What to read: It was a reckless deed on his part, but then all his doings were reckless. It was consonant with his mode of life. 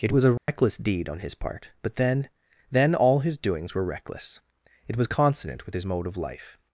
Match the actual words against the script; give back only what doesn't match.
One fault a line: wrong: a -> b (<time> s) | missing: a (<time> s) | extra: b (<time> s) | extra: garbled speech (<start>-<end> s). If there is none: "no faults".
extra: then (2.7 s)